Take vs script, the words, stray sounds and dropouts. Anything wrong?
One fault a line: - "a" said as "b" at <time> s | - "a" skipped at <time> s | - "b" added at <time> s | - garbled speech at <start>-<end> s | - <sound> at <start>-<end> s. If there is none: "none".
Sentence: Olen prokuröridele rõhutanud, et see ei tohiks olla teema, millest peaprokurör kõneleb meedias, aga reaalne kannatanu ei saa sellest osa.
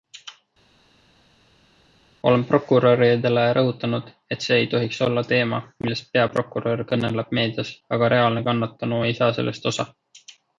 none